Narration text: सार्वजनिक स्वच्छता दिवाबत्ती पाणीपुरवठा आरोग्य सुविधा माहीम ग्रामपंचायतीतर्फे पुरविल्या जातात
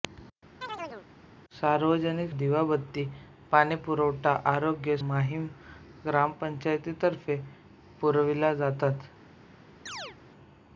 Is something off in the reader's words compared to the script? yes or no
yes